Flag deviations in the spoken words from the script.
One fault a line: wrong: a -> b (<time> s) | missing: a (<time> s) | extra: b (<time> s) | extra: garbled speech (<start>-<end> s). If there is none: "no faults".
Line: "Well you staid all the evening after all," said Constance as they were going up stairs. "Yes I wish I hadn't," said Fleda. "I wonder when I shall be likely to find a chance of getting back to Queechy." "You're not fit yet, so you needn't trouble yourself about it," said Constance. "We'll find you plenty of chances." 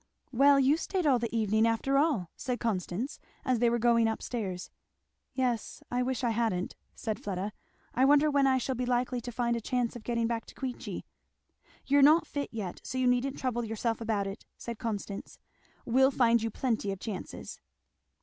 no faults